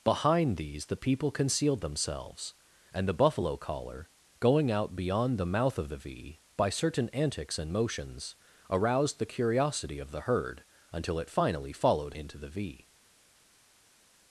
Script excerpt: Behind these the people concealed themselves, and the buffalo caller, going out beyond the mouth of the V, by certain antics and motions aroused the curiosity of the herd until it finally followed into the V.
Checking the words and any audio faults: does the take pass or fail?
pass